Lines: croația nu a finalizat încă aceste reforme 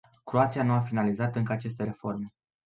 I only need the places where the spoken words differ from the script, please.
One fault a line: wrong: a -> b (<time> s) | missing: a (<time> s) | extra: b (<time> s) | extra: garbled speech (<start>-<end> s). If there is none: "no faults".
no faults